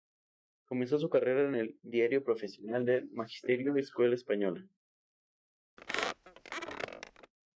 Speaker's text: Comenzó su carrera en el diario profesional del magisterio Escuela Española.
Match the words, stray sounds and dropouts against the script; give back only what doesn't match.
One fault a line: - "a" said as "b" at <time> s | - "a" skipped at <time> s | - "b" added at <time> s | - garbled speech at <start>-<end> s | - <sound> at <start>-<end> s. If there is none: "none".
- squeak at 5.8-7.3 s